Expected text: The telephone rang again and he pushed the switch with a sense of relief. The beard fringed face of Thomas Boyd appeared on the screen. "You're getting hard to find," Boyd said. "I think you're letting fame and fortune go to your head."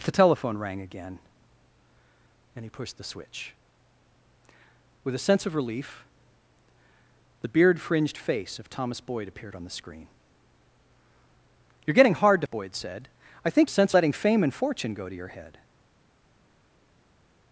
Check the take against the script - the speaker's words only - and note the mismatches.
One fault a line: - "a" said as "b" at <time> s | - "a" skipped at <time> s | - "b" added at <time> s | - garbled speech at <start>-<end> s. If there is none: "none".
- "find" skipped at 12.5 s
- "you're" said as "sense" at 13.7 s